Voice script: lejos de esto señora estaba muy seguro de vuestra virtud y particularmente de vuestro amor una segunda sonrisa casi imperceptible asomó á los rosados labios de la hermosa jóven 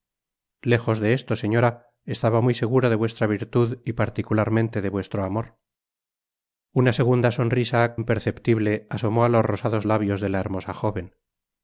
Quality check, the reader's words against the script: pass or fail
fail